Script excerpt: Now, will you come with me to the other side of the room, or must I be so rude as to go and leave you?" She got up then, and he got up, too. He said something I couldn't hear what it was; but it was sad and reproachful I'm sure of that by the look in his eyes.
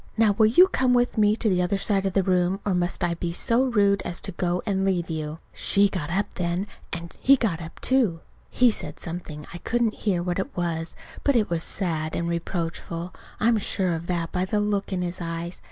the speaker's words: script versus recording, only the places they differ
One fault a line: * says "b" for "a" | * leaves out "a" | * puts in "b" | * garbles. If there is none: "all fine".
all fine